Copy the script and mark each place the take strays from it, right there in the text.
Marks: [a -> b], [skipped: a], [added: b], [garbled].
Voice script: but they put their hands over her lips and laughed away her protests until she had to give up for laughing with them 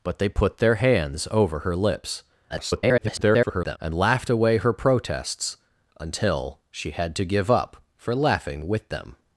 but they put their hands over her lips [garbled] and laughed away her protests until she had to give up for laughing with them